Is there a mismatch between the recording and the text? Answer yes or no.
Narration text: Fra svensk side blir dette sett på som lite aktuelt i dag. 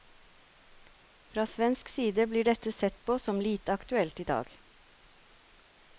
no